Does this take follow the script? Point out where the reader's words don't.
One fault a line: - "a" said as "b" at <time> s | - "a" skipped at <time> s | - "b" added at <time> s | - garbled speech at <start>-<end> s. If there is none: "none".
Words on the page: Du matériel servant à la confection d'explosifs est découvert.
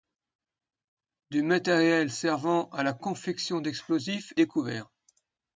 - "est" skipped at 4.3 s